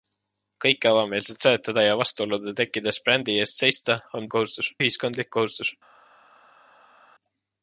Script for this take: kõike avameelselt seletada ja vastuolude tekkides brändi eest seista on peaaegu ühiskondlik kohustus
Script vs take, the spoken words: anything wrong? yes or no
yes